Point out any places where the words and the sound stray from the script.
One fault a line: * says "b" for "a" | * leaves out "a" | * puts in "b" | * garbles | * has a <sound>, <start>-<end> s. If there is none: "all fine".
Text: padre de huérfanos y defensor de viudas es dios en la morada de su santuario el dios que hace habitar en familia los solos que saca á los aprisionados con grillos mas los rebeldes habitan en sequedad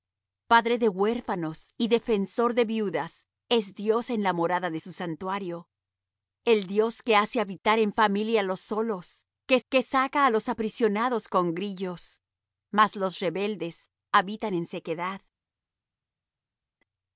* puts in "que"